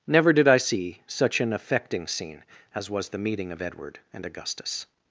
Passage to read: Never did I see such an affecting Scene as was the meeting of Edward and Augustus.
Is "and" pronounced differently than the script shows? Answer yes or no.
no